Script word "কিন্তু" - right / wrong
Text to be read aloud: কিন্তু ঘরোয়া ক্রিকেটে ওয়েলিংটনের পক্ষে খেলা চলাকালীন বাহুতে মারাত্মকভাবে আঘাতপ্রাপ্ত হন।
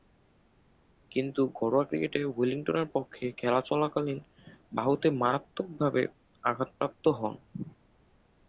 right